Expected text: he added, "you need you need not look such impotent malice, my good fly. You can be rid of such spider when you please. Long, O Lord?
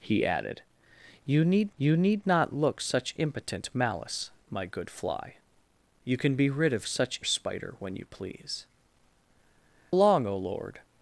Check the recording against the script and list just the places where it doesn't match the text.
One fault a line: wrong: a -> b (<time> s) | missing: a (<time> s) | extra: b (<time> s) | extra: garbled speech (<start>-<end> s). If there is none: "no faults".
no faults